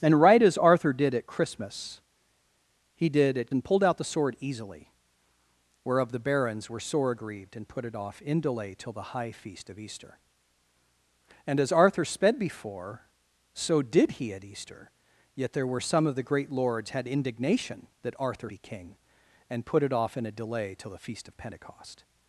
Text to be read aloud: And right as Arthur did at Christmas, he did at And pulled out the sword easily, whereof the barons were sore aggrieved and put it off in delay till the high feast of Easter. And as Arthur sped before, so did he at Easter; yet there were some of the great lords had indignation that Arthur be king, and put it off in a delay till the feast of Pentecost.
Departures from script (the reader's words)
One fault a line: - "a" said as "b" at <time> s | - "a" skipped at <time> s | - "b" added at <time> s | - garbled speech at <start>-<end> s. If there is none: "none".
none